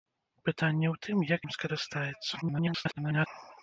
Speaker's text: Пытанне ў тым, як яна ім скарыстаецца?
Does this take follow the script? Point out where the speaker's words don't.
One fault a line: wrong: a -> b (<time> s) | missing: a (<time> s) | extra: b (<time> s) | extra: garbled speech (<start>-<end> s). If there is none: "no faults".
missing: яна (1.4 s)
extra: garbled speech (2.4-3.3 s)